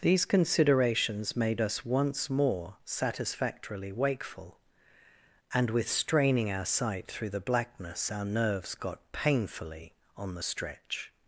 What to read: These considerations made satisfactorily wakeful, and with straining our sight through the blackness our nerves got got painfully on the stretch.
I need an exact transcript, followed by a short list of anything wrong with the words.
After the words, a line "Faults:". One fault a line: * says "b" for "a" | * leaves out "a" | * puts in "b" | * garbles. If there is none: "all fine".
These considerations made us once more satisfactorily wakeful, and with straining our sight through the blackness our nerves got painfully on the stretch.
Faults:
* puts in "us once more"
* leaves out "got"